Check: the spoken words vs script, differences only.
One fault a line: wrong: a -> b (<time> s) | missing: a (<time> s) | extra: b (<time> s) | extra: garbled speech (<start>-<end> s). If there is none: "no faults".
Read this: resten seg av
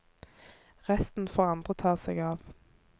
extra: får andre ta (1.3 s)